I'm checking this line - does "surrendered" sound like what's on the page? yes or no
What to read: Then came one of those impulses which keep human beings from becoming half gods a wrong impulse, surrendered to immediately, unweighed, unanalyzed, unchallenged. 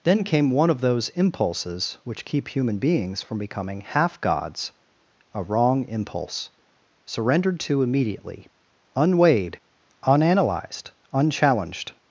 yes